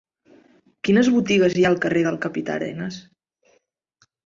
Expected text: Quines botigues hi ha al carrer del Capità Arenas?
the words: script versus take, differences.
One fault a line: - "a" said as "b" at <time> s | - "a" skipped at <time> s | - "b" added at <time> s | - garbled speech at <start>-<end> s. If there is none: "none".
none